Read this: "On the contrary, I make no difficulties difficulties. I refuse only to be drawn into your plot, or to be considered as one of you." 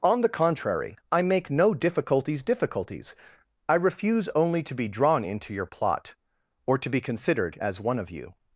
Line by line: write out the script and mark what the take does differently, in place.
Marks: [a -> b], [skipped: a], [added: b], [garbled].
"On the contrary, I make no difficulties difficulties. I refuse only to be drawn into your plot, or to be considered as one of you."